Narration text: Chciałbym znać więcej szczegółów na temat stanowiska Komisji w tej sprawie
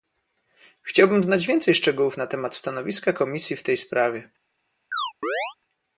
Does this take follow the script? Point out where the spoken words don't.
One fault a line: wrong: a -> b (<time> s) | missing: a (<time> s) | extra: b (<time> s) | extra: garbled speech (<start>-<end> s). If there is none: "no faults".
no faults